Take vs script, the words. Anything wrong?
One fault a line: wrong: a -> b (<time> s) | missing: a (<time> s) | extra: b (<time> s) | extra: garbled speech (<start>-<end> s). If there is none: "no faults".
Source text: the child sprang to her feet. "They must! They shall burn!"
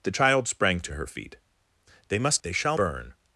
no faults